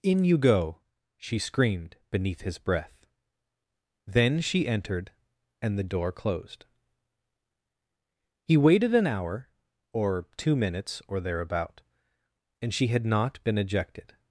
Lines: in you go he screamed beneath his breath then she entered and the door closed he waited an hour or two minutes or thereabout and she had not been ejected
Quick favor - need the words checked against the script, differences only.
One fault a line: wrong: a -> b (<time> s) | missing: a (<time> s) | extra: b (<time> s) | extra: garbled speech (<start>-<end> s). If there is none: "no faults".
wrong: he -> she (1.2 s)